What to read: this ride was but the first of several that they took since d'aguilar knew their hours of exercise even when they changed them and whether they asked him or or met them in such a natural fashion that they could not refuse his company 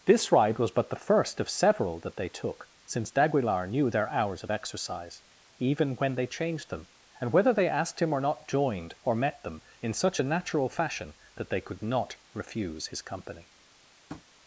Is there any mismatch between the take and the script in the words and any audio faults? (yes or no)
yes